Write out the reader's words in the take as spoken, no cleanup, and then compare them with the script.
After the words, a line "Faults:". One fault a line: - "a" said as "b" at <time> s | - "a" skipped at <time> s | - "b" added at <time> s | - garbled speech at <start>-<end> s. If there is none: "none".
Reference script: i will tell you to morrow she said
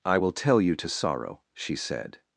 i will tell you to sorrow she said
Faults:
- "morrow" said as "sorrow" at 0.9 s